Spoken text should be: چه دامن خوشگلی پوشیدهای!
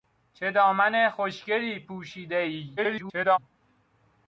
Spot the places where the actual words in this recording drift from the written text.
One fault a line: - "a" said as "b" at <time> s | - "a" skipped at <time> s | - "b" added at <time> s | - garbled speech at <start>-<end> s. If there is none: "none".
- garbled speech at 2.8-3.4 s